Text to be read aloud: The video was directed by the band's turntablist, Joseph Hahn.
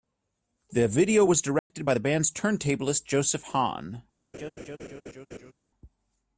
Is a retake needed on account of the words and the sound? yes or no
yes